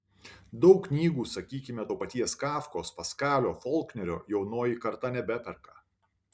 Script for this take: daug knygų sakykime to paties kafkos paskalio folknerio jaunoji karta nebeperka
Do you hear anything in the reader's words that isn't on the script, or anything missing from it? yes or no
no